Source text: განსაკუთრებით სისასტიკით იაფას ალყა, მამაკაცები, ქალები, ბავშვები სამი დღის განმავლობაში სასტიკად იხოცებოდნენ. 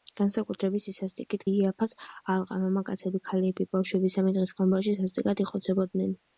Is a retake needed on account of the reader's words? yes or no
no